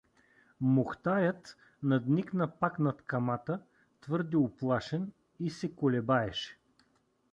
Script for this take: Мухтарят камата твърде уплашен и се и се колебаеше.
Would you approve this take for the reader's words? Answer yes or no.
no